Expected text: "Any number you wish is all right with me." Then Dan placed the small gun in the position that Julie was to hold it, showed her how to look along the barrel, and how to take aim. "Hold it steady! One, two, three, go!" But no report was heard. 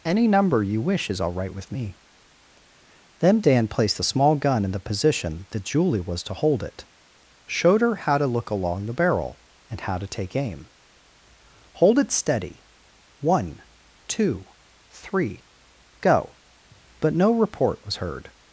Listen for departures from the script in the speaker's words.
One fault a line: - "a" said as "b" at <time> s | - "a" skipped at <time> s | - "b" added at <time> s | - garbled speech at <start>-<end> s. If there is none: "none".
none